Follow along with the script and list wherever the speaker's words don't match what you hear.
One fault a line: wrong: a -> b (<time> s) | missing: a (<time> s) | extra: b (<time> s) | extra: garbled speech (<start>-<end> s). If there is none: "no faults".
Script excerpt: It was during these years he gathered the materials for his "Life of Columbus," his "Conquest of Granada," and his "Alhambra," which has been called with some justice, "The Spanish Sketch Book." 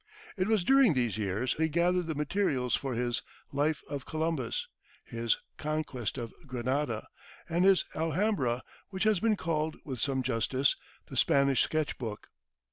no faults